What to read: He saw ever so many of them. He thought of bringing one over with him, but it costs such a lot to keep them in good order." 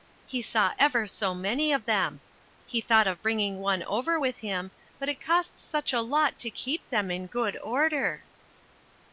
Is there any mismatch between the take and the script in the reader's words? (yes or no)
no